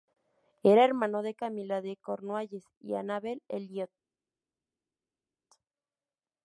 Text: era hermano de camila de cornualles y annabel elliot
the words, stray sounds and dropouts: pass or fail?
pass